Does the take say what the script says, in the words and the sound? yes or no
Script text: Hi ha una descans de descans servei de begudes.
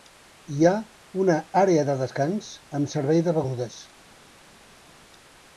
no